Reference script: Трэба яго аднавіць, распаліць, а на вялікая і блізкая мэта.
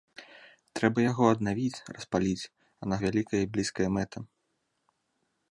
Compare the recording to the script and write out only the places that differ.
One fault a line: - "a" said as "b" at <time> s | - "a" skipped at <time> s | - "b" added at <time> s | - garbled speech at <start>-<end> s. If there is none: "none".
none